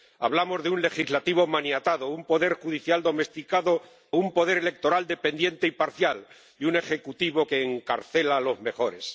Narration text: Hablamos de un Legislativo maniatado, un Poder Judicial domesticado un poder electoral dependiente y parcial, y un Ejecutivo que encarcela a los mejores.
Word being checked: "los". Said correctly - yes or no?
yes